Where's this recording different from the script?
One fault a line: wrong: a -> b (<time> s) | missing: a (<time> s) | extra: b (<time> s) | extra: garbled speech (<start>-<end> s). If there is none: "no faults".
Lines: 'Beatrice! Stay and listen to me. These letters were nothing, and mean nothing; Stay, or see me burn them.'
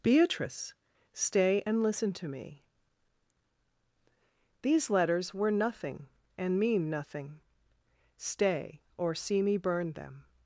no faults